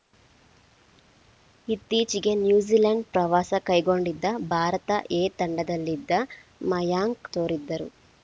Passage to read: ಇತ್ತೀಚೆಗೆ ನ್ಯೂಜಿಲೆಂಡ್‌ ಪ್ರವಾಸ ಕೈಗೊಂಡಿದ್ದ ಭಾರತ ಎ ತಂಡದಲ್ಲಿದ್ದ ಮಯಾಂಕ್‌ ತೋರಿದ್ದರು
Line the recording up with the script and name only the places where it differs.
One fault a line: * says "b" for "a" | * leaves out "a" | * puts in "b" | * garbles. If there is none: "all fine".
all fine